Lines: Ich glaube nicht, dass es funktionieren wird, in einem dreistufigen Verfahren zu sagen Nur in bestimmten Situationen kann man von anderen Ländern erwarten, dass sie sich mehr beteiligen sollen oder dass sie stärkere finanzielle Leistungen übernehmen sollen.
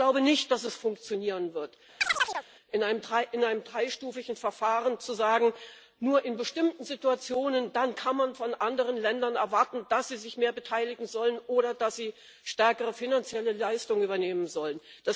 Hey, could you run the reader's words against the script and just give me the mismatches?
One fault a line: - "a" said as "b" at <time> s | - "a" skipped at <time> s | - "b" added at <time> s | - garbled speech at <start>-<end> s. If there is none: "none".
none